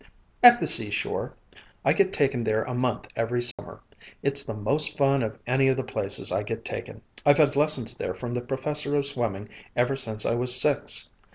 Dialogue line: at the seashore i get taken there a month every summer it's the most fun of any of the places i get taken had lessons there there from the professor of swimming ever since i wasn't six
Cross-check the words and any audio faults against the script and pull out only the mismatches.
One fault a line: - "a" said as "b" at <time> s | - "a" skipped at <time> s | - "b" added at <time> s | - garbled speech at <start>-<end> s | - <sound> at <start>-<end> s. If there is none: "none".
- dropout at 3.5-3.6 s
- "i've" added at 7.2 s
- "there" skipped at 8.2 s
- "wasn't" said as "was" at 10.3 s